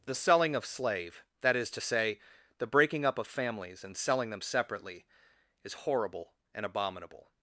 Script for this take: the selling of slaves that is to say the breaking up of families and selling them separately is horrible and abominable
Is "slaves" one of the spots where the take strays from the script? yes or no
yes